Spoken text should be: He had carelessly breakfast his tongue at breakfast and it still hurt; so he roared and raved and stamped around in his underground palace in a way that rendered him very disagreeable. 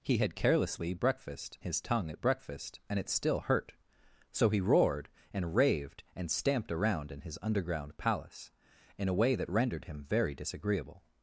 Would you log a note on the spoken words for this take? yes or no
no